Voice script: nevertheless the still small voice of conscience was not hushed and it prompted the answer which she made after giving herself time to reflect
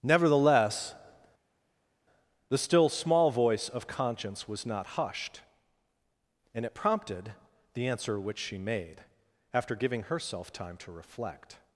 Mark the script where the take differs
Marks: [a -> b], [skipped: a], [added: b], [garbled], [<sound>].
nevertheless the still small voice of conscience was not hushed and it prompted the answer which she made after giving herself time to reflect